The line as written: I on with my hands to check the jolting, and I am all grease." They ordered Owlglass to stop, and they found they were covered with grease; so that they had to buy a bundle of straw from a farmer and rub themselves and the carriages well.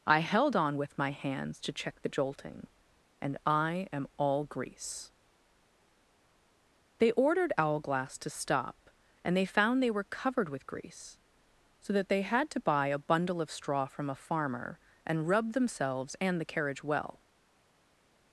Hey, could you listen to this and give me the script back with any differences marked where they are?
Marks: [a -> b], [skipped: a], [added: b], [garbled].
I [added: held] on with my hands to check the jolting, and I am all grease." They ordered Owlglass to stop, and they found they were covered with grease; so that they had to buy a bundle of straw from a farmer and rub themselves and the [carriages -> carriage] well.